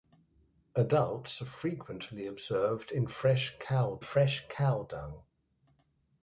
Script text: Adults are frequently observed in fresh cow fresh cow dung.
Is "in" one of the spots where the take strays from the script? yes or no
no